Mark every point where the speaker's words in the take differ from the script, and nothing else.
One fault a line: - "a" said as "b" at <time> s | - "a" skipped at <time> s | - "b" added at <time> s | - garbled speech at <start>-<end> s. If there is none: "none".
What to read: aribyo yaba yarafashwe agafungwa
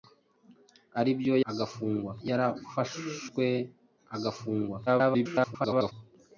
- "yaba" said as "agafungwa" at 1.5 s
- garbled speech at 4.9-5.9 s